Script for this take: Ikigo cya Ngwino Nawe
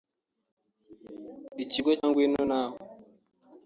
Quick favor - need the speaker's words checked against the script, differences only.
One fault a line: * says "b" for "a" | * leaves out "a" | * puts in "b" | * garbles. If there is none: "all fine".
* leaves out "cya"